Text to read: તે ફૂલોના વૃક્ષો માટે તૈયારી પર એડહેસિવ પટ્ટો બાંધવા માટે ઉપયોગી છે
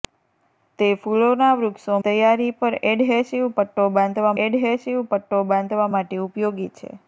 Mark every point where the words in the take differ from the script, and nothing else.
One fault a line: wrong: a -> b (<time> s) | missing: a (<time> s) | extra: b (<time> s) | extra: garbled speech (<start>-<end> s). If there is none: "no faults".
missing: માટે (2.0 s)
extra: એડહેસિવ પટ્ટો બાંધવા (4.4 s)